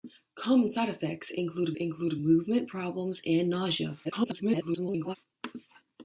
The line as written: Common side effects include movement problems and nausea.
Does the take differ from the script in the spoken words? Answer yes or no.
yes